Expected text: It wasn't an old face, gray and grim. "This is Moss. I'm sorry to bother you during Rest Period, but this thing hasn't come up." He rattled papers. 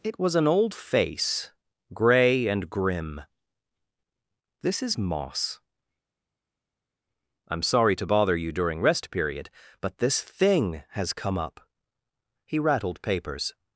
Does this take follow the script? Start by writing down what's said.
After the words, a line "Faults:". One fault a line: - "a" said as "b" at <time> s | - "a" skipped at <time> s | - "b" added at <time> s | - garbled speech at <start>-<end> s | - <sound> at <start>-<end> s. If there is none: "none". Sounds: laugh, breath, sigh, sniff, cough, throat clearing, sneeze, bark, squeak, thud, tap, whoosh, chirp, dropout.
It was an old face, gray and grim. "This is Moss. I'm sorry to bother you during Rest Period, but this thing has come up." He rattled papers.
Faults:
- "wasn't" said as "was" at 0.2 s
- "hasn't" said as "has" at 10.9 s